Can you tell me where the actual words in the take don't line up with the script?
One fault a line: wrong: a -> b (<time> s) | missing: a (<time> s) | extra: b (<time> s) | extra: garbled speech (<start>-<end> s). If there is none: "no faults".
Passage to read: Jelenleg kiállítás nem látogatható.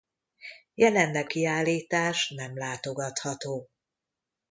no faults